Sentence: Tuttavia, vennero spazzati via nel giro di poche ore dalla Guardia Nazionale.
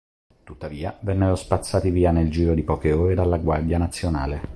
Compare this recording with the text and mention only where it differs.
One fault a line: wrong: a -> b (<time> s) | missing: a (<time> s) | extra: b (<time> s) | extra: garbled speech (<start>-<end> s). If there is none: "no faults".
no faults